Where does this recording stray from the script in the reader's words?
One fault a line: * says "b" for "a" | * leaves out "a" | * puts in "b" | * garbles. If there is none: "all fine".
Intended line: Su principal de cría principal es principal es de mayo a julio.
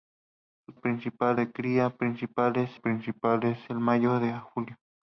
all fine